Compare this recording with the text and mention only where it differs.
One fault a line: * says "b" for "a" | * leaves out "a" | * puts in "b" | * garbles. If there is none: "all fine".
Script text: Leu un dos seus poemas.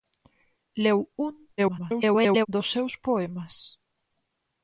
* garbles